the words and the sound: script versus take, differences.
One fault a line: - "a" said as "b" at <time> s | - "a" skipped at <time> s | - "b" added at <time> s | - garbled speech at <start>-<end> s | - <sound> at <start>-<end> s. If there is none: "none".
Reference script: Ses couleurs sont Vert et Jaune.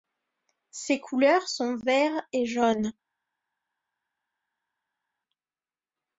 none